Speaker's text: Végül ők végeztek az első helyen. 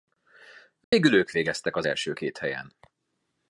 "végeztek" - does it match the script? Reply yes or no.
yes